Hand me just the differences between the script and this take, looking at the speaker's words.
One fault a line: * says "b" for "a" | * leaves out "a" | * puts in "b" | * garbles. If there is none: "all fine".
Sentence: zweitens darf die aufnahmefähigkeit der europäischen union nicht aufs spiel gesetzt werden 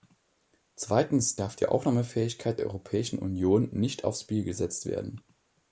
all fine